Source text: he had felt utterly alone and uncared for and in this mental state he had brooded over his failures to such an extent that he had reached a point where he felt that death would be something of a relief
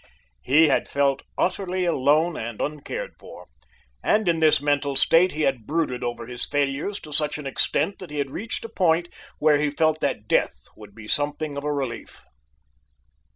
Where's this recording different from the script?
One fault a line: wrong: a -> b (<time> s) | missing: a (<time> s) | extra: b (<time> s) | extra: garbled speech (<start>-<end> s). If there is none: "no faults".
no faults